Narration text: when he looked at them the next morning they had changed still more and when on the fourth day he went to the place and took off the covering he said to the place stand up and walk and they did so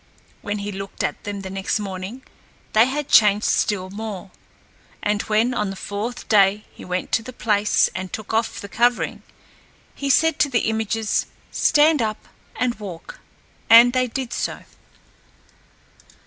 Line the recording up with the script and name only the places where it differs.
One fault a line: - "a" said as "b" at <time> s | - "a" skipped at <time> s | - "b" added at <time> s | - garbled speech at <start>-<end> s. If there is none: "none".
- "place" said as "images" at 10.6 s